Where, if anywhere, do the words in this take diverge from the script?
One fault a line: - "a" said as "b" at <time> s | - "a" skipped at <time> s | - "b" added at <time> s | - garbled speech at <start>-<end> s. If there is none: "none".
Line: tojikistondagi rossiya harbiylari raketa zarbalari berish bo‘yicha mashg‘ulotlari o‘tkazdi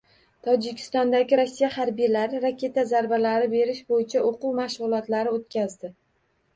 - "o‘quv" added at 4.3 s